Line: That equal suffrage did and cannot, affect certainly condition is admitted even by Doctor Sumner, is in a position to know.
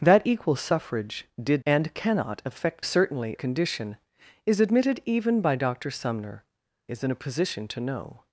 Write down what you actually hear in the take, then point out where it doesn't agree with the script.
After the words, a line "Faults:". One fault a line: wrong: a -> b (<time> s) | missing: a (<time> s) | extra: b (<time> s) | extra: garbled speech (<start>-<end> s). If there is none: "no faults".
That equal suffrage did and cannot, affect certainly condition is admitted even by Doctor Sumner, is in a position to know.
Faults:
no faults